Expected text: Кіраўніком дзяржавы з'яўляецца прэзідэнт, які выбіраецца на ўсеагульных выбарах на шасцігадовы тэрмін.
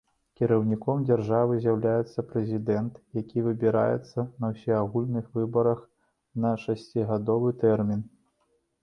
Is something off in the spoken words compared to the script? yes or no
no